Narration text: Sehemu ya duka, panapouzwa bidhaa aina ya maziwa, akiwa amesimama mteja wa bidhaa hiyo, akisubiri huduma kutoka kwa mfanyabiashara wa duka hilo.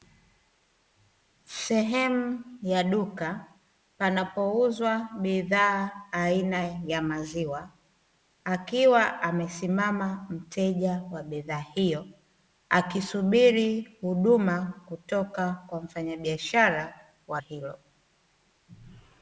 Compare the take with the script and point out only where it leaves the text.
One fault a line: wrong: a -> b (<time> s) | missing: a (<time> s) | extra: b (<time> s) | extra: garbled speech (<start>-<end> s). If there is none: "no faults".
missing: duka (17.4 s)